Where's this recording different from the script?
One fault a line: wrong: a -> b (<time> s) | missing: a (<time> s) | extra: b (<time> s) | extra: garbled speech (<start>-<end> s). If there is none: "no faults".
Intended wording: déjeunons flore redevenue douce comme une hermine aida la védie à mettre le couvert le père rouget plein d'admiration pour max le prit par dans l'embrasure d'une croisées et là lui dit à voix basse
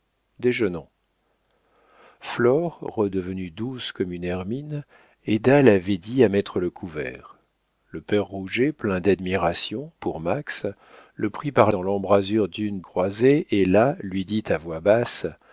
no faults